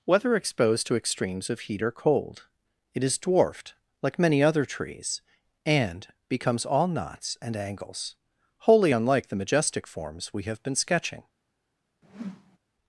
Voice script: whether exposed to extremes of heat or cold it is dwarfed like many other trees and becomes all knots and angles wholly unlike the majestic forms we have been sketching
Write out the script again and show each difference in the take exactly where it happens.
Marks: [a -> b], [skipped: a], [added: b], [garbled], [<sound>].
whether exposed to extremes of heat or cold it is dwarfed like many other trees and becomes all knots and angles wholly unlike the majestic forms we have been sketching [whoosh]